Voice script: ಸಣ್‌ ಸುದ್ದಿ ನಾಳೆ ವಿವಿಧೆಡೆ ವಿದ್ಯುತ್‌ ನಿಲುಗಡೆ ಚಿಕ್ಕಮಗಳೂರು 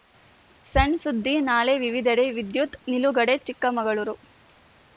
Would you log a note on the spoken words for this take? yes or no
no